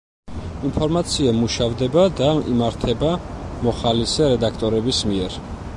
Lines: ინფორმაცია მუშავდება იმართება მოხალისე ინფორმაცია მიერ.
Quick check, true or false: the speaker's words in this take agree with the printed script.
false